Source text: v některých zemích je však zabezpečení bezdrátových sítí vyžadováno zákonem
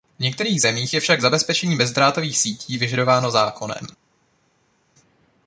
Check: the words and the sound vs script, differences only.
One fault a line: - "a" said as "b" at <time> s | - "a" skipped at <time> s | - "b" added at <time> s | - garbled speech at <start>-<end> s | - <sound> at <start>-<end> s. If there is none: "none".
none